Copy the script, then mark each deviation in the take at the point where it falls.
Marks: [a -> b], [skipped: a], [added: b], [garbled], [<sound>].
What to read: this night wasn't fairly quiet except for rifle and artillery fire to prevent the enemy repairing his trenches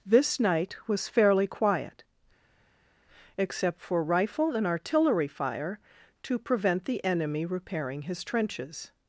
this night [wasn't -> was] fairly quiet except for rifle and artillery fire to prevent the enemy repairing his trenches